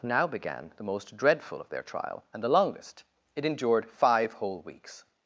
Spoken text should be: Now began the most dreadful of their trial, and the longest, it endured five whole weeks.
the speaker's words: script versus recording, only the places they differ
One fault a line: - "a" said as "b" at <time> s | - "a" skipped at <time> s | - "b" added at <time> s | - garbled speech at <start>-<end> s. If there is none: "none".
none